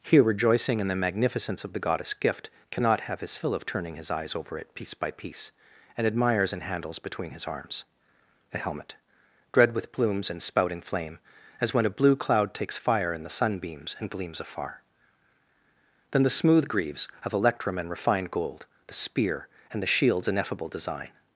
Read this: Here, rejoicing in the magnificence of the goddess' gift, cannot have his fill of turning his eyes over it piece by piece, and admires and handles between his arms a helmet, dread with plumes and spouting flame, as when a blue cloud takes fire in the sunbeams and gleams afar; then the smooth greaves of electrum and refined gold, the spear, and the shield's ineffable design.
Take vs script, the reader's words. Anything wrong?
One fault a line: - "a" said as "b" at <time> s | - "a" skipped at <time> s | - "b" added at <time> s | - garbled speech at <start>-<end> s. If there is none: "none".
none